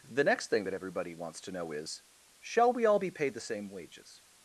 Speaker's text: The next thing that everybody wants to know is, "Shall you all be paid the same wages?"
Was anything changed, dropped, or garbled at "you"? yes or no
yes